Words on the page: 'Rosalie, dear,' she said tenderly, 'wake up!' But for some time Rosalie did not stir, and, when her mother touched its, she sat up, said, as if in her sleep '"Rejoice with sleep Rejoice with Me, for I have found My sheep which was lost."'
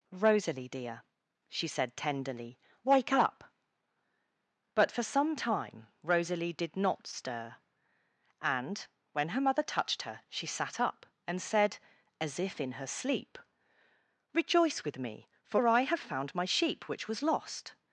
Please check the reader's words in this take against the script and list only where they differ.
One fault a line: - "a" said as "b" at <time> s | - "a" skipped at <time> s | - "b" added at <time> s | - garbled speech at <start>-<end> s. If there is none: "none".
- "its" said as "her" at 10.0 s
- "and" added at 11.3 s
- "sleep Rejoice with" skipped at 15.0 s